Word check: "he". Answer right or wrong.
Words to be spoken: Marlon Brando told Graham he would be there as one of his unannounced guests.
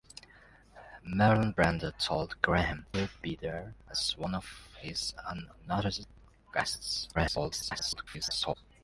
wrong